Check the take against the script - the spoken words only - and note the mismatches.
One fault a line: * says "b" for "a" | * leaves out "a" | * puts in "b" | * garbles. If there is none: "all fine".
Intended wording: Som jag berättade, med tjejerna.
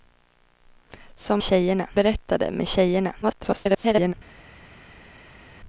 * says "tjejerna" for "jag"
* garbles